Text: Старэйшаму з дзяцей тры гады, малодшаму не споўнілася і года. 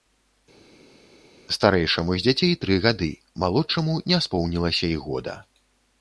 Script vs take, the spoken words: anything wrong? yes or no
no